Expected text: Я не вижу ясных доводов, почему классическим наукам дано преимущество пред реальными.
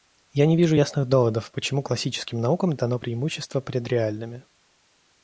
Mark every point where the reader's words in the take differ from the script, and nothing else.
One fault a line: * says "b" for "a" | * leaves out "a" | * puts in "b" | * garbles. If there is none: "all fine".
all fine